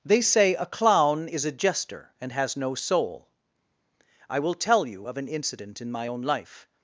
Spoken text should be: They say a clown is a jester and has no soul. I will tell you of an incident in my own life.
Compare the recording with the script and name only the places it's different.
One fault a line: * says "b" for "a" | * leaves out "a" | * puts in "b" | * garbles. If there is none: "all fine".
all fine